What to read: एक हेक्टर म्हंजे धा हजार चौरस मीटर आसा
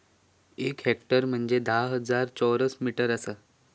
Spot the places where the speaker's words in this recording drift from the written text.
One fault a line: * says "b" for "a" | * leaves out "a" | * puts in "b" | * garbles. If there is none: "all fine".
all fine